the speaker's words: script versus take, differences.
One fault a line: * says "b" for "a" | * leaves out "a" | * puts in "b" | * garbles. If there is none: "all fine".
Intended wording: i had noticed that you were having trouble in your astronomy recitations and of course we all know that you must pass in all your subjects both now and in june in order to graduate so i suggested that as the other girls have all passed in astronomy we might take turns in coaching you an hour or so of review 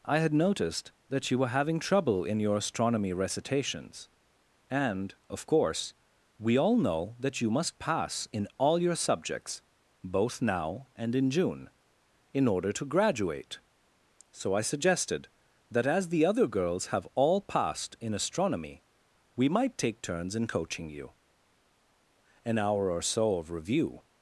all fine